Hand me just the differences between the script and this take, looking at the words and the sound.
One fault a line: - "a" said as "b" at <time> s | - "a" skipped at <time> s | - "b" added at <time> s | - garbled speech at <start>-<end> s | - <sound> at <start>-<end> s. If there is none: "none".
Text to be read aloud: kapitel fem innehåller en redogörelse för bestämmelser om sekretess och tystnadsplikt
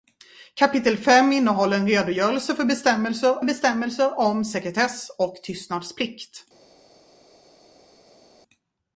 - "bestämmelser" added at 3.4 s